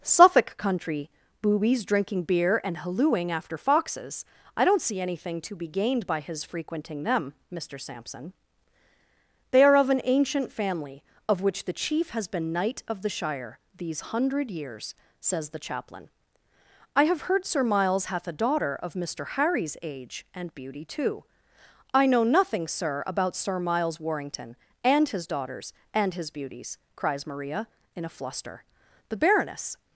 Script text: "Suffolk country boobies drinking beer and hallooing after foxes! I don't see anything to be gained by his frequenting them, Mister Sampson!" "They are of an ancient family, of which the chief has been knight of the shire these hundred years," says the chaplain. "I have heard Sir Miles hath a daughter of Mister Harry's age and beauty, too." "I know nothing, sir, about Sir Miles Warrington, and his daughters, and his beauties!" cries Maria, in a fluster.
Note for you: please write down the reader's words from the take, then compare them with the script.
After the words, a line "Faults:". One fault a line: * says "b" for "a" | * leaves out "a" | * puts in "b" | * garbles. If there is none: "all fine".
"Suffolk country boobies drinking beer and hallooing after foxes! I don't see anything to be gained by his frequenting them, Mister Sampson!" "They are of an ancient family, of which the chief has been knight of the shire these hundred years," says the chaplain. "I have heard Sir Miles hath a daughter of Mister Harry's age and beauty, too." "I know nothing, sir, about Sir Miles Warrington, and his daughters, and his beauties!" cries Maria, in a fluster. "The Baroness
Faults:
* puts in "The Baroness"